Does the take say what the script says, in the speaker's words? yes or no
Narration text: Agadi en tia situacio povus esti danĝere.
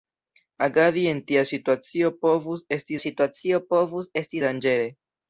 no